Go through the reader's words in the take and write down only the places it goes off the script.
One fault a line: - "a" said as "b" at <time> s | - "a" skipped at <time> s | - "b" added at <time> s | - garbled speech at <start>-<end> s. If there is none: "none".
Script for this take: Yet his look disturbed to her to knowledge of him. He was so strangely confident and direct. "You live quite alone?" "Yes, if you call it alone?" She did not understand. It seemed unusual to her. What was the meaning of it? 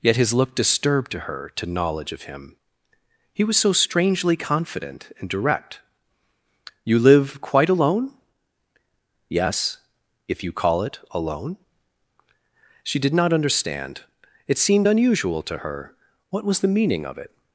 none